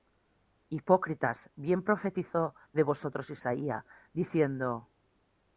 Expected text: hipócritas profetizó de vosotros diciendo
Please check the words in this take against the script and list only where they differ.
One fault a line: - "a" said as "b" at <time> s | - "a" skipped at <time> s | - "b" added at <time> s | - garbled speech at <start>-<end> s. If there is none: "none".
- "bien" added at 1.6 s
- "isaías" added at 3.3 s